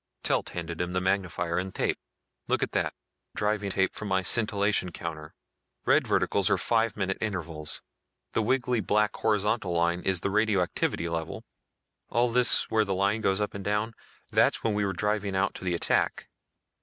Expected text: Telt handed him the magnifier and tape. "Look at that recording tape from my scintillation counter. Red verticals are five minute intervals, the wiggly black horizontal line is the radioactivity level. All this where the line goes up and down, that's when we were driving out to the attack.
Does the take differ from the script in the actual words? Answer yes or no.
yes